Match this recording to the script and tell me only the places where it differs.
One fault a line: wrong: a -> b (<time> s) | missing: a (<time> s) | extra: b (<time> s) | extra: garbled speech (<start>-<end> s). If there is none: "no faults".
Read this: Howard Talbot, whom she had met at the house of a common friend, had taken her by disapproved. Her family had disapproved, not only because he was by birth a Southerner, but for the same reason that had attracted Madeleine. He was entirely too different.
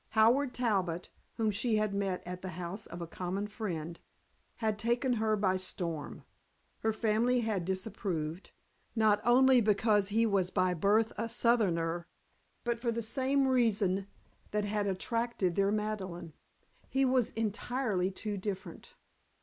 wrong: disapproved -> storm (5.6 s)
extra: their (15.5 s)